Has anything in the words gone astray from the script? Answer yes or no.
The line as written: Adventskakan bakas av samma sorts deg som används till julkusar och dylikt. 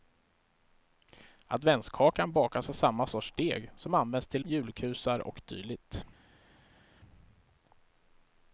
no